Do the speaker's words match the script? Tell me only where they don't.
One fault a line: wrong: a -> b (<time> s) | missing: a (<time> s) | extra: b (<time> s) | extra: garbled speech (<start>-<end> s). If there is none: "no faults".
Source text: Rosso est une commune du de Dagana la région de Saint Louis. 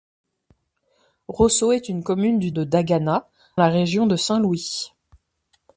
no faults